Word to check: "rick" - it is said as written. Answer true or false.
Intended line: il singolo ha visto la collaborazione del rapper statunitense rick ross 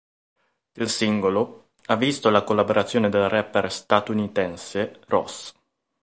false